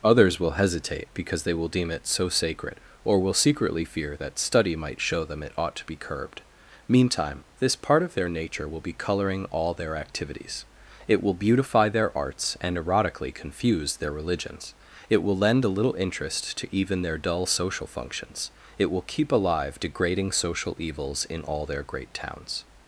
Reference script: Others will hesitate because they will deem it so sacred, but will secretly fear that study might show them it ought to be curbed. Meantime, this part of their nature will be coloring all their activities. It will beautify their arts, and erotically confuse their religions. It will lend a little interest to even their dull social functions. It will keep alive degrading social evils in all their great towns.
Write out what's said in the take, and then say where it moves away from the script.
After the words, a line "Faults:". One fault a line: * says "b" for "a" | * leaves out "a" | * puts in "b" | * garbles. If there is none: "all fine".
Others will hesitate because they will deem it so sacred, or will secretly fear that study might show them it ought to be curbed. Meantime, this part of their nature will be coloring all their activities. It will beautify their arts, and erotically confuse their religions. It will lend a little interest to even their dull social functions. It will keep alive degrading social evils in all their great towns.
Faults:
* says "or" for "but"